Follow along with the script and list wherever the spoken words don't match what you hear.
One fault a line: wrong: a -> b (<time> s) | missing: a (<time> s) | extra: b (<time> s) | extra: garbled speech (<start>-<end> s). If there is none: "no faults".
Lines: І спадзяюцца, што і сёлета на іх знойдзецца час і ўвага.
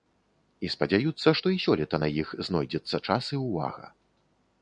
no faults